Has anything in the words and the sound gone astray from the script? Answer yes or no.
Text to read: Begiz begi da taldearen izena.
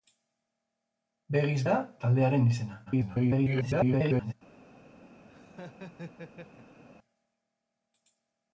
yes